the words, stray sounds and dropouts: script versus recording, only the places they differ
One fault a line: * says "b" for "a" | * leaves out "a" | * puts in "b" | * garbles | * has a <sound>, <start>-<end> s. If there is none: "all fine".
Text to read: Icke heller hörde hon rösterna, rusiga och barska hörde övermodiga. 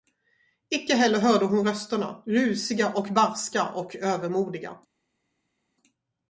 * says "och" for "hörde"